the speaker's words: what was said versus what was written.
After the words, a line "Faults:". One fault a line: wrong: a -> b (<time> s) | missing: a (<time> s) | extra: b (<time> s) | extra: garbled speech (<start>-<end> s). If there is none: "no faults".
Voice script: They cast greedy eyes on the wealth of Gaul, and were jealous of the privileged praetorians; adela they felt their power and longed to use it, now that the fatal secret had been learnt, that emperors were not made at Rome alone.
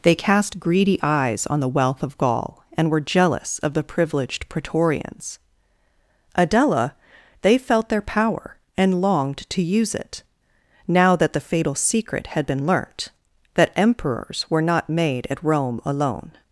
They cast greedy eyes on the wealth of Gaul, and were jealous of the privileged praetorians; adela they felt their power and longed to use it, now that the fatal secret had been learnt, that emperors were not made at Rome alone.
Faults:
no faults